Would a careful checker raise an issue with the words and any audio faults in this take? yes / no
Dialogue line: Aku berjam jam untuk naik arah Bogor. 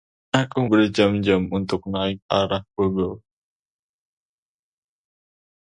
no